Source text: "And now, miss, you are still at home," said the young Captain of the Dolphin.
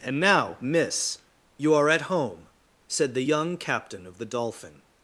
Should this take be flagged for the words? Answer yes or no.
yes